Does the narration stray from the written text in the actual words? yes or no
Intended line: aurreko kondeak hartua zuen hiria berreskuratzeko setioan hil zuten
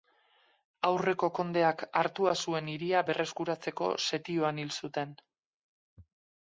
no